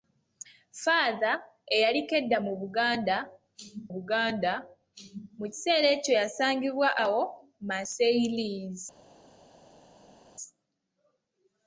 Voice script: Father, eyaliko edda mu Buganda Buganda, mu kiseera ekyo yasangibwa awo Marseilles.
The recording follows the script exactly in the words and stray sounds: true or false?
true